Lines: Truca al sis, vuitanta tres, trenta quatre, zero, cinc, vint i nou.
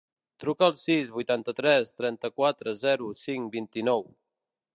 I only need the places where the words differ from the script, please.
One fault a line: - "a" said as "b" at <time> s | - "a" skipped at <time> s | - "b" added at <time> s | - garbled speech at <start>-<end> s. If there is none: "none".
none